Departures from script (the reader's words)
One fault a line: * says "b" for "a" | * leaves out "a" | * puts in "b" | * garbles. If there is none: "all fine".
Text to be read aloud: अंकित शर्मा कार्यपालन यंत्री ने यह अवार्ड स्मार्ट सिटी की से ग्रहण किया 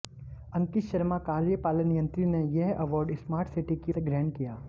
all fine